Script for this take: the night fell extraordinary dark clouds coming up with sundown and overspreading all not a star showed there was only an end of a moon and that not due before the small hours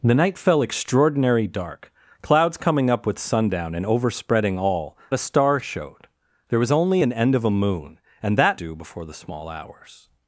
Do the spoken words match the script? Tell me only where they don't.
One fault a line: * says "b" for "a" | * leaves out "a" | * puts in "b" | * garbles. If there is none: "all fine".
* leaves out "not"
* leaves out "not"